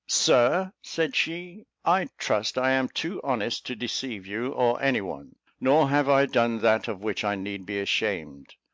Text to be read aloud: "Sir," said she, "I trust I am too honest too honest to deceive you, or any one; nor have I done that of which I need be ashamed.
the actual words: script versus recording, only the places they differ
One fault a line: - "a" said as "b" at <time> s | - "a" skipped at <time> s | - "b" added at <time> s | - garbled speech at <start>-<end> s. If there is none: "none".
- "too honest" skipped at 3.7 s